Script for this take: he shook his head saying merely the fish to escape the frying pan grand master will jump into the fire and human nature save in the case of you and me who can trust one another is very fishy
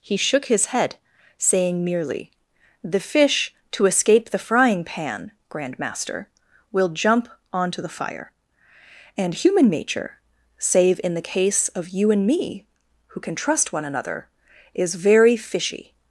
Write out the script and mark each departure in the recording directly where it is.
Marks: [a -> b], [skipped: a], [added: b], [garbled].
he shook his head saying merely the fish to escape the frying pan grand master will jump [into -> onto] the fire and human nature save in the case of you and me who can trust one another is very fishy